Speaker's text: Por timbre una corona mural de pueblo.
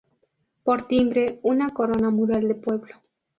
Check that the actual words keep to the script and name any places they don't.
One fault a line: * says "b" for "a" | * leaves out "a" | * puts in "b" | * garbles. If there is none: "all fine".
all fine